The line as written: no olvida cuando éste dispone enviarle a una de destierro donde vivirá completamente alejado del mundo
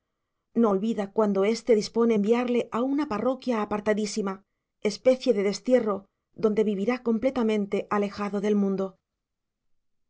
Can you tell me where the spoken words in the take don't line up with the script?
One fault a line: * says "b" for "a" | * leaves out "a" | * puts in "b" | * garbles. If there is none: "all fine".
* puts in "parroquia apartadísima especie"